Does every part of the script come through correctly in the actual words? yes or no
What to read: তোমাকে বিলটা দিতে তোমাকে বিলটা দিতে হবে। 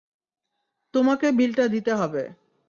no